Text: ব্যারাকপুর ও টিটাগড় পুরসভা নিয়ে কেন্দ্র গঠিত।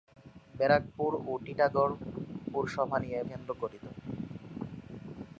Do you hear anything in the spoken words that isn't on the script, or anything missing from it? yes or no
no